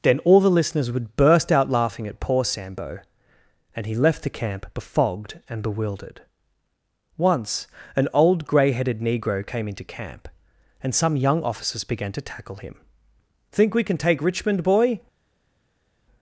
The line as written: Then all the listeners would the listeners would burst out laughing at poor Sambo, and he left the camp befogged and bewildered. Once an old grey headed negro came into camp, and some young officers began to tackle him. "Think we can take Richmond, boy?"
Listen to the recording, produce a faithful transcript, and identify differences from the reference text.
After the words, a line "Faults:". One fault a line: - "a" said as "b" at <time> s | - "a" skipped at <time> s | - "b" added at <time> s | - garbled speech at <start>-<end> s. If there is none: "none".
Then all the listeners would burst out laughing at poor Sambo, and he left the camp befogged and bewildered. Once an old grey headed negro came into camp, and some young officers began to tackle him. "Think we can take Richmond, boy?"
Faults:
- "the listeners would" skipped at 1.1 s